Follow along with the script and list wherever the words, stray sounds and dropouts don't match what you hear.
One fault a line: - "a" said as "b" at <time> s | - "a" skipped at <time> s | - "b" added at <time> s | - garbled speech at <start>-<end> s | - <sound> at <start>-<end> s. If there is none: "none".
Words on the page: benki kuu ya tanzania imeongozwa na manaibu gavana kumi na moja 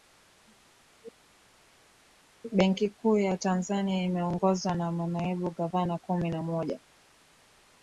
none